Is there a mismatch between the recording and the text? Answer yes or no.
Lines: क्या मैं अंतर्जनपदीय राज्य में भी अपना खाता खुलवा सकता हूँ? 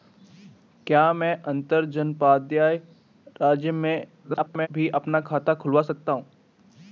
yes